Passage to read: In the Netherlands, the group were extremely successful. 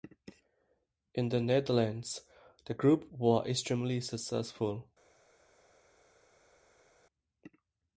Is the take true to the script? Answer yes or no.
yes